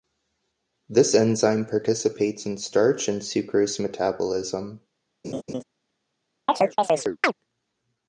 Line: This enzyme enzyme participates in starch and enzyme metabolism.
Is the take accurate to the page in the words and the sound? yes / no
no